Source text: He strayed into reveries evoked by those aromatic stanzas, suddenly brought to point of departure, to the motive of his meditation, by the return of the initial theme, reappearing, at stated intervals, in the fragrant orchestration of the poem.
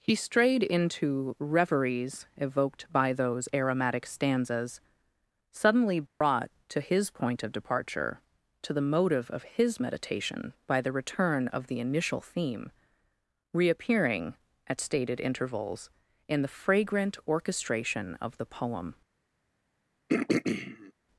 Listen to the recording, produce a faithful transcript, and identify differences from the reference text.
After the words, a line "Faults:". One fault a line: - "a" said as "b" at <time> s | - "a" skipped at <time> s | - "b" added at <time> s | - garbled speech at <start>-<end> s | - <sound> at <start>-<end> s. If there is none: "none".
He strayed into reveries evoked by those aromatic stanzas, suddenly brought to his point of departure, to the motive of his meditation, by the return of the initial theme, reappearing, at stated intervals, in the fragrant orchestration of the poem.
Faults:
- dropout at 6.1-6.2 s
- "his" added at 6.8 s
- throat clearing at 20.1-20.9 s